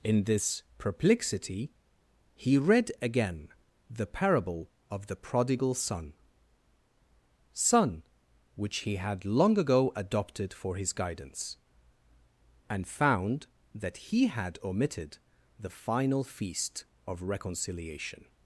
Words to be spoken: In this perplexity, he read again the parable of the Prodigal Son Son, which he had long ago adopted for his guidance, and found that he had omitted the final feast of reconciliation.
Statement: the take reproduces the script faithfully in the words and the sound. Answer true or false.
true